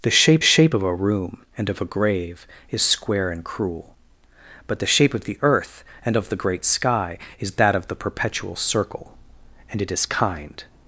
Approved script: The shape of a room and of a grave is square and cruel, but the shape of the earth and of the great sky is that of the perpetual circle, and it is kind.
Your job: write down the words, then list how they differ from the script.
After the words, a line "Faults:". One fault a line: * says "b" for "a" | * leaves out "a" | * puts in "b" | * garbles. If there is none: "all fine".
The shape shape of a room and of a grave is square and cruel, but the shape of the earth and of the great sky is that of the perpetual circle, and it is kind.
Faults:
* puts in "shape"